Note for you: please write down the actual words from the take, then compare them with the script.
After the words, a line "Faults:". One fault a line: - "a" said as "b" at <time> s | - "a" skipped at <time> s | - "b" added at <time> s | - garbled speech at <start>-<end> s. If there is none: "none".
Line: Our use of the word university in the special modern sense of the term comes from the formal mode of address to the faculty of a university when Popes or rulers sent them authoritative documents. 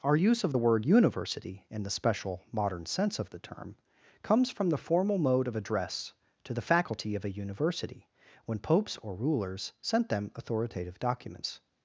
Our use of the word university in the special modern sense of the term comes from the formal mode of address to the faculty of a university when Popes or rulers sent them authoritative documents.
Faults:
none